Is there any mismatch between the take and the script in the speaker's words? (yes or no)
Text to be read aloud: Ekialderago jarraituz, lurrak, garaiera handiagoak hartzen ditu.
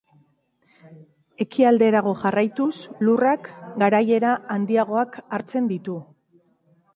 no